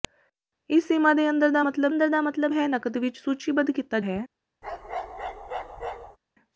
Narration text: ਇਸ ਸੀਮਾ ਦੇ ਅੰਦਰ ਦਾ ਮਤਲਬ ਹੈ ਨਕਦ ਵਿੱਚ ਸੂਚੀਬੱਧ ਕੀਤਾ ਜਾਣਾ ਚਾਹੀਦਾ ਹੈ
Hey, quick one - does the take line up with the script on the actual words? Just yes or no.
no